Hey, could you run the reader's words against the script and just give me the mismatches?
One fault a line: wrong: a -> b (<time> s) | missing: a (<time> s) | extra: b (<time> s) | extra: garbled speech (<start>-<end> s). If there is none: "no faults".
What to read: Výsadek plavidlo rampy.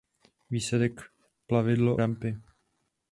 no faults